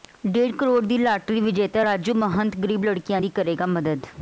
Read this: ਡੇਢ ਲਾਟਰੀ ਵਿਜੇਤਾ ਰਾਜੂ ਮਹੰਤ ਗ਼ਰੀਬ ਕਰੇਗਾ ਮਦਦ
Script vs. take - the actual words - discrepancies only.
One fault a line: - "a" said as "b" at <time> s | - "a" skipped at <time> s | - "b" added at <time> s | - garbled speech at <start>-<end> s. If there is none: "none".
- "ਕਰੋੜ ਦੀ" added at 0.6 s
- "ਲੜਕੀਆਂ ਦੀ" added at 2.8 s